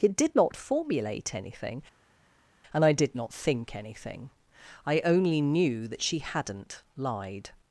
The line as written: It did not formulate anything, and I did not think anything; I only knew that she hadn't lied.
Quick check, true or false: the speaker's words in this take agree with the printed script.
true